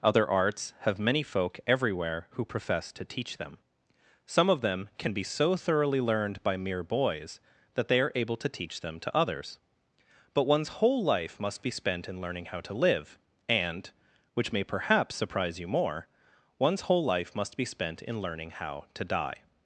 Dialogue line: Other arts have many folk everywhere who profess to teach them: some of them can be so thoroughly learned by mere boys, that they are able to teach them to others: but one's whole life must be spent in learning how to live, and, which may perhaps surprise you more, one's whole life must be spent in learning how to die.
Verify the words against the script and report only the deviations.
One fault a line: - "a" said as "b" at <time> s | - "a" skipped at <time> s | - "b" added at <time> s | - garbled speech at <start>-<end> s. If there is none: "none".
none